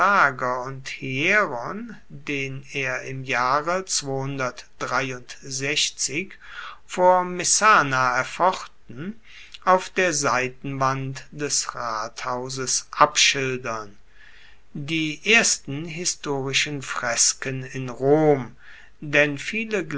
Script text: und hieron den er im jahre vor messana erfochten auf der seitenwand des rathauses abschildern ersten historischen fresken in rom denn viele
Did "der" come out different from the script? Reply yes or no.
no